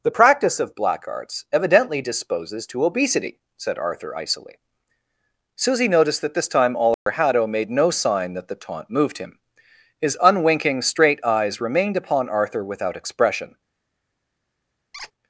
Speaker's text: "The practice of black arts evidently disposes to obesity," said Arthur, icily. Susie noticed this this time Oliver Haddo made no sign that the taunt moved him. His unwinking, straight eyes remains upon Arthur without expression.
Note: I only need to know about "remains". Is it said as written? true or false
false